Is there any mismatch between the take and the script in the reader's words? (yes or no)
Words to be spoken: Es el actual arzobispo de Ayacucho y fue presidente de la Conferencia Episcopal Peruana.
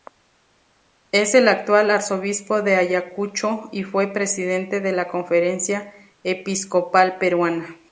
no